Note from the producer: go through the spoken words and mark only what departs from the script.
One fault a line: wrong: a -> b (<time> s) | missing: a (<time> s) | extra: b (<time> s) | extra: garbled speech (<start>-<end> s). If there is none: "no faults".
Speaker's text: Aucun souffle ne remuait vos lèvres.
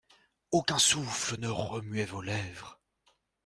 no faults